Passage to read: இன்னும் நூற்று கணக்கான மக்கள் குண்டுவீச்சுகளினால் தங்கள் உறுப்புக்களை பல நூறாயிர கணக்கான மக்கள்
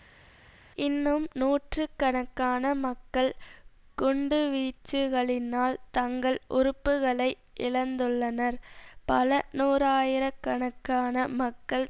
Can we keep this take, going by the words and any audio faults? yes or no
no